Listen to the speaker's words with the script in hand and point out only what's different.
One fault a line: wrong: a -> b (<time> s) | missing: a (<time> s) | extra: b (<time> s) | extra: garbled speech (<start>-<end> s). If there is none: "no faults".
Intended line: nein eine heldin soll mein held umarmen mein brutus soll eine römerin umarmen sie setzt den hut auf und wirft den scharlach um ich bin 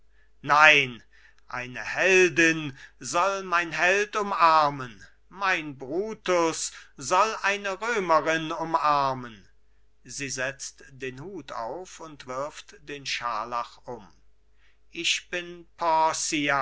no faults